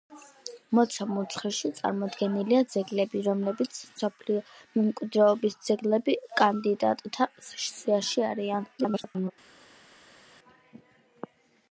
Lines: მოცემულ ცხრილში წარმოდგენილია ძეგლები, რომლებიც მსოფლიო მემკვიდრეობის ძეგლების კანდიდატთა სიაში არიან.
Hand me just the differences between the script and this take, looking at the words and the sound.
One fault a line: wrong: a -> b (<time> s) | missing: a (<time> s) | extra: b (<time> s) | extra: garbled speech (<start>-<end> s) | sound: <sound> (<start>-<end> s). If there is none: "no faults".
extra: garbled speech (8.8-9.3 s)